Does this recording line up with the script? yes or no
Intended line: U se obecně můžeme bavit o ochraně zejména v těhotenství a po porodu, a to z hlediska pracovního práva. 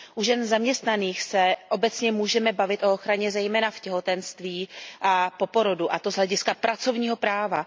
no